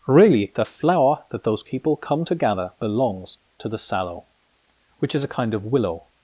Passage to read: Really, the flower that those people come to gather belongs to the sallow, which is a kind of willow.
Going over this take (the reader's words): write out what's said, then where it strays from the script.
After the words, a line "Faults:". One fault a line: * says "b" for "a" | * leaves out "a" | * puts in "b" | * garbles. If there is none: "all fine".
Really, the flower that those people come to gather belongs to the sallow, which is a kind of willow.
Faults:
all fine